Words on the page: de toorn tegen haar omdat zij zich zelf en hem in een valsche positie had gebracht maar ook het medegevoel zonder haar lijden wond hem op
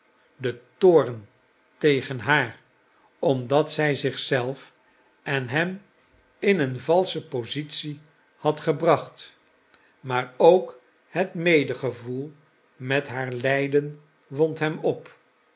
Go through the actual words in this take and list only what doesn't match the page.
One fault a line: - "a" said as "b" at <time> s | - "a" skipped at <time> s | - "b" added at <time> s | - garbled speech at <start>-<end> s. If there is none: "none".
- "zonder" said as "met" at 12.8 s